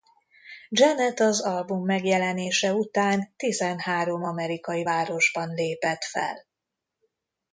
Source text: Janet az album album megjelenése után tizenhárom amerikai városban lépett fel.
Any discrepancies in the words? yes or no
yes